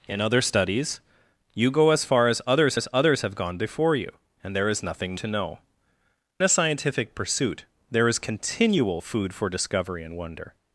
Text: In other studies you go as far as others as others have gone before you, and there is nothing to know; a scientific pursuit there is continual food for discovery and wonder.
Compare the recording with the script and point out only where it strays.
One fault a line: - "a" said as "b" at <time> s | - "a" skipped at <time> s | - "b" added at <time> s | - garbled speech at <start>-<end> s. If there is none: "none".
none